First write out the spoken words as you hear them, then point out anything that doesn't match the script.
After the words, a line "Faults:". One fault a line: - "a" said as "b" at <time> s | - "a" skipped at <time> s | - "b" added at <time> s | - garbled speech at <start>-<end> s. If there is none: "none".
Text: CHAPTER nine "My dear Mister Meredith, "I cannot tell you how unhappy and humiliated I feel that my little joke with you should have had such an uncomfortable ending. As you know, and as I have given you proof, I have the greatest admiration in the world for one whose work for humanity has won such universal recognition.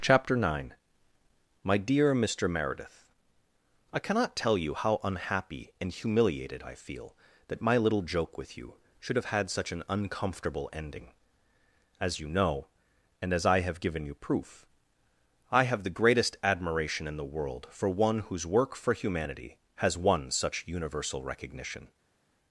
CHAPTER nine "My dear Mister Meredith, "I cannot tell you how unhappy and humiliated I feel that my little joke with you should have had such an uncomfortable ending. As you know, and as I have given you proof, I have the greatest admiration in the world for one whose work for humanity has won such universal recognition.
Faults:
none